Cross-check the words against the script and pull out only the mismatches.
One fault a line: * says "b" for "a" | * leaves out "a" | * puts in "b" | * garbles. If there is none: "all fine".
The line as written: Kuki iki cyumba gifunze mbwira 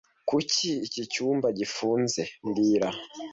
all fine